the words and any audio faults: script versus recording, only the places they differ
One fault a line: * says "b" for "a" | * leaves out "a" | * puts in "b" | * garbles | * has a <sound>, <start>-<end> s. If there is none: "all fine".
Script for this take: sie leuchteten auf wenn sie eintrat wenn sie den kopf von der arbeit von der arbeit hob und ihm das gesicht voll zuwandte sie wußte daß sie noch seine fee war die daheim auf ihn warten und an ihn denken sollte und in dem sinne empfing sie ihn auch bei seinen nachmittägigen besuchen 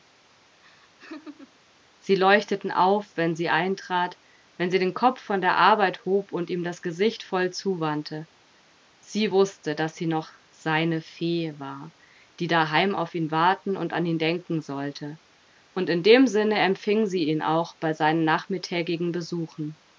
* has a laugh, 0.6-1.6 s
* leaves out "von der arbeit"